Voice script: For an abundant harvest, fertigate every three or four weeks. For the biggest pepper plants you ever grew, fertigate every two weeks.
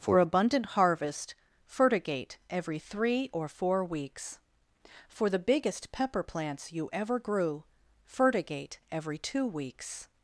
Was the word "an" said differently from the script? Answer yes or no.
yes